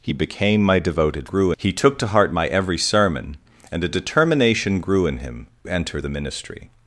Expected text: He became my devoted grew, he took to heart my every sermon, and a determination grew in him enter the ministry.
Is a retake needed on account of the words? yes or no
no